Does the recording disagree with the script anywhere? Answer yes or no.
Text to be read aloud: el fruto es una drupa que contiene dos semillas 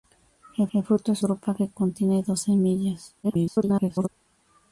yes